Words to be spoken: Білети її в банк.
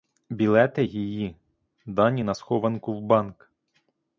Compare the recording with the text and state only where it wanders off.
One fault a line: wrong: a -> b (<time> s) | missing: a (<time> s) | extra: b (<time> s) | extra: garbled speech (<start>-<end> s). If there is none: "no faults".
extra: дані на схованку (1.9 s)